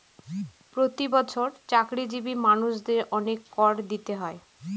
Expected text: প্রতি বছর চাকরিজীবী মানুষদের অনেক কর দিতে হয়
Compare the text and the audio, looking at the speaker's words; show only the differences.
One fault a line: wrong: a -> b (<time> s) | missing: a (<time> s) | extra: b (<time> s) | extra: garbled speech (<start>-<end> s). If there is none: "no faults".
no faults